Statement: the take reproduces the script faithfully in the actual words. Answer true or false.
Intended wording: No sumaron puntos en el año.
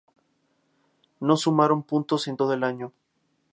false